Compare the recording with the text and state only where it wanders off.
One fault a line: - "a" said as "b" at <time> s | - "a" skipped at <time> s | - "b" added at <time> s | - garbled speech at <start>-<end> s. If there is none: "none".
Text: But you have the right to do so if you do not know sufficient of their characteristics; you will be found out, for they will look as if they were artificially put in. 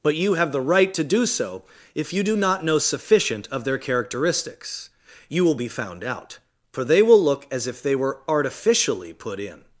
none